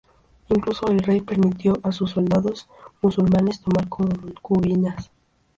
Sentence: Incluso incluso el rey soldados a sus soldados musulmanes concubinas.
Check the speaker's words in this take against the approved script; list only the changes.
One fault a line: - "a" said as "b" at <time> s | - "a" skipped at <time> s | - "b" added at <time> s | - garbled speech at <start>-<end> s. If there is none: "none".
- "incluso" skipped at 0.9 s
- "soldados" said as "permitió" at 1.2 s
- "tomar" added at 3.6 s